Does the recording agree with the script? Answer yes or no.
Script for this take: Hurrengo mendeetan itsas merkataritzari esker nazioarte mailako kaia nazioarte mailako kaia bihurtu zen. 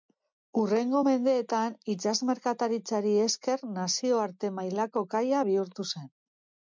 no